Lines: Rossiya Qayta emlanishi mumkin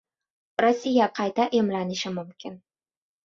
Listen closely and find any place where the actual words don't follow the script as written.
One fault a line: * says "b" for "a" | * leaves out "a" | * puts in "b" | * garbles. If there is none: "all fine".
all fine